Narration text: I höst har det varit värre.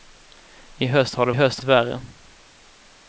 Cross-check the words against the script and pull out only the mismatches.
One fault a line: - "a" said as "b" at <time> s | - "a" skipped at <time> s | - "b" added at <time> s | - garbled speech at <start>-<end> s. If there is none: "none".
- "varit" said as "höst" at 1.3 s